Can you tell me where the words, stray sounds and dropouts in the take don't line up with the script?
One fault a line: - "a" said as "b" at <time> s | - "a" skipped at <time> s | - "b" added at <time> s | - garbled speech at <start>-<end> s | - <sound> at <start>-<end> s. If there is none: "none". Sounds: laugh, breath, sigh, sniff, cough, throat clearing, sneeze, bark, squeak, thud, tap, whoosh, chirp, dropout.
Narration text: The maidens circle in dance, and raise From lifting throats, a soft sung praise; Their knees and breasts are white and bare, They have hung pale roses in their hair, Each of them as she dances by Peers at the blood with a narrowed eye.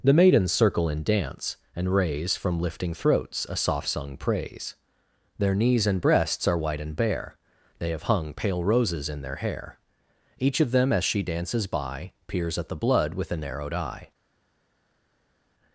none